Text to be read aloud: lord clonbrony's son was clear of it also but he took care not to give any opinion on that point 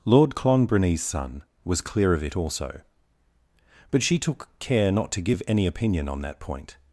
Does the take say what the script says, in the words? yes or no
no